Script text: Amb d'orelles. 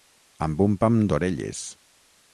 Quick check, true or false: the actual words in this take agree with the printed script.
false